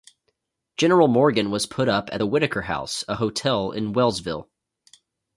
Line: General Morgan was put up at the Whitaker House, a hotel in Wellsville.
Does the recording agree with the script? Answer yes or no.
yes